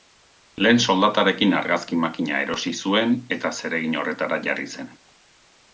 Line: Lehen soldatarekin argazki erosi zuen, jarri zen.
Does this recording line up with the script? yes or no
no